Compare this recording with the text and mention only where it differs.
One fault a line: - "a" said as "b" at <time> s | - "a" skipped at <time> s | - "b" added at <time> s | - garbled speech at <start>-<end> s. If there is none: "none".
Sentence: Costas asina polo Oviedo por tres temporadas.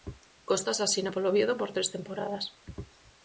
none